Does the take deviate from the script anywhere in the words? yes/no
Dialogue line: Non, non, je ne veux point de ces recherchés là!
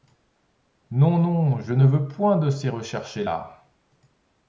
no